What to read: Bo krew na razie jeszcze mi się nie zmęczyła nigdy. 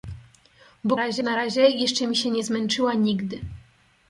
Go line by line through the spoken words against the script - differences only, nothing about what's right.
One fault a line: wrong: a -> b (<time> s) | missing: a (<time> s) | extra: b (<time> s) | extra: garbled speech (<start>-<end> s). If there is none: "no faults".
wrong: krew -> razie (1.0 s)